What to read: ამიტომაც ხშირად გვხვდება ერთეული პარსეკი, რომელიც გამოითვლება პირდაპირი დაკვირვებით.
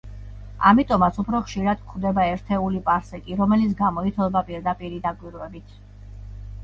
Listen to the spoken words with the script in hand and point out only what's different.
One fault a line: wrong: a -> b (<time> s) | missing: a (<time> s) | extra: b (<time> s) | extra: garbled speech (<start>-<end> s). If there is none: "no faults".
extra: უფრო (1.2 s)